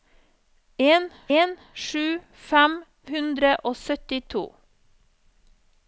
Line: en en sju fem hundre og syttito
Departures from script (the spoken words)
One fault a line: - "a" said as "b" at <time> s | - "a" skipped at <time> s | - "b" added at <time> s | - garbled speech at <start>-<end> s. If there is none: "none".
none